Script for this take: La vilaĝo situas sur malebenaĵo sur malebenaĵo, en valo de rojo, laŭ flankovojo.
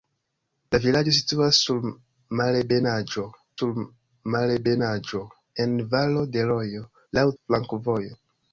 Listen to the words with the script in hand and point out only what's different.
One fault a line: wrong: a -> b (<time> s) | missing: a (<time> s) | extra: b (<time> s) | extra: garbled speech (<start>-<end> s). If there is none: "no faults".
no faults